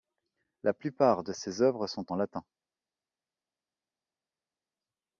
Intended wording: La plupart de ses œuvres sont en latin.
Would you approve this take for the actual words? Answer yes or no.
yes